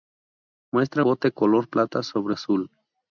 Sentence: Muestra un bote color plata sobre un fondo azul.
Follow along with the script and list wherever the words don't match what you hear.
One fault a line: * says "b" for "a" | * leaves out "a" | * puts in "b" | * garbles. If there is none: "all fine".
* leaves out "un"
* leaves out "un fondo"